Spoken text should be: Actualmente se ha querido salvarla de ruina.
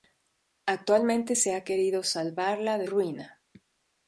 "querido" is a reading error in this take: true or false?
false